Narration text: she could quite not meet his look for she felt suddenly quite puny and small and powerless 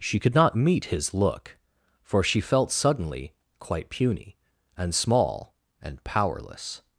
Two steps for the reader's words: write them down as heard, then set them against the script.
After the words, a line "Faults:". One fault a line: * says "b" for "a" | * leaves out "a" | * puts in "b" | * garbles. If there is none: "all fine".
she could not meet his look for she felt suddenly quite puny and small and powerless
Faults:
* leaves out "quite"